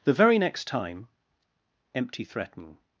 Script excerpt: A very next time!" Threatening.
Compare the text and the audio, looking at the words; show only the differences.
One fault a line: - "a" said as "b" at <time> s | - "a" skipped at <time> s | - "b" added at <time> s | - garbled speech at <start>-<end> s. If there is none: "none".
- "A" said as "The" at 0.0 s
- "Empty" added at 1.9 s